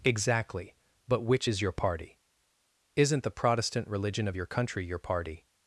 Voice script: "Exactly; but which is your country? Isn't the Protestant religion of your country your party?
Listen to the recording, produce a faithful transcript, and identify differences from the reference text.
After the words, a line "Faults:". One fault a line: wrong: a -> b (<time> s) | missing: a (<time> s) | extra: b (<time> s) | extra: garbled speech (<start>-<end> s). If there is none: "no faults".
"Exactly; but which is your party? Isn't the Protestant religion of your country your party?
Faults:
wrong: country -> party (1.7 s)